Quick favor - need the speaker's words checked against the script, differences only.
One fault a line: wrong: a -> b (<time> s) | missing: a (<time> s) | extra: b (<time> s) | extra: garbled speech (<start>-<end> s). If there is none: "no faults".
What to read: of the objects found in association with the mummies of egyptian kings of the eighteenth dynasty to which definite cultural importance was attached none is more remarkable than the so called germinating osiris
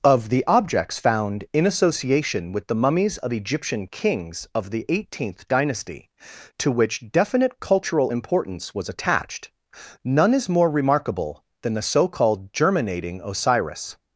no faults